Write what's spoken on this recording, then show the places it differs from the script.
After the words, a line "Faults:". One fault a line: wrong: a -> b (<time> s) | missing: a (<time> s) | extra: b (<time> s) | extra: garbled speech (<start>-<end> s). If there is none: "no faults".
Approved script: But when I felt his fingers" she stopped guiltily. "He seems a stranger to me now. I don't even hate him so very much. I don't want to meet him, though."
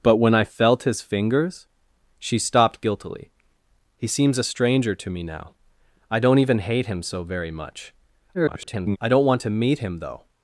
But when I felt his fingers" she stopped guiltily. "He seems a stranger to me now. I don't even hate him so very much. [garbled] I don't want to meet him, though."
Faults:
extra: garbled speech (8.3-9.0 s)